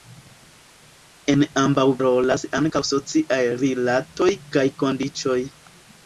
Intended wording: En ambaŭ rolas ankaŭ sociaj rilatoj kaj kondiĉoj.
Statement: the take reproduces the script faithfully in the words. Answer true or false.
true